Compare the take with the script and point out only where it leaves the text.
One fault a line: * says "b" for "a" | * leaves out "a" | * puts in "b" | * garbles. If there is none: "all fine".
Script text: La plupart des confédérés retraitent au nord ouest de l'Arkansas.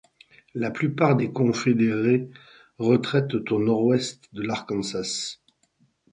all fine